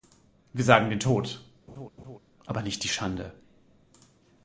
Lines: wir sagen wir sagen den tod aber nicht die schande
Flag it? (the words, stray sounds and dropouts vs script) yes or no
yes